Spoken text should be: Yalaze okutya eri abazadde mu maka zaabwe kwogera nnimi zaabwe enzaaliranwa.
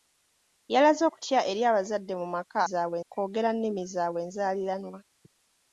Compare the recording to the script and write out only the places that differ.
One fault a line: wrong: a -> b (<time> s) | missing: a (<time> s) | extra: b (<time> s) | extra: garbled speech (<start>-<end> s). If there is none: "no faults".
no faults